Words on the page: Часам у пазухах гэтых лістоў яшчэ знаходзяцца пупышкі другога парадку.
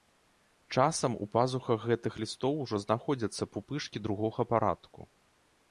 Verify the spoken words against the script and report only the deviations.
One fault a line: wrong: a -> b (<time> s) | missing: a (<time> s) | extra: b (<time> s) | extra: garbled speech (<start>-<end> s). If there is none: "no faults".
wrong: яшчэ -> ужо (2.7 s)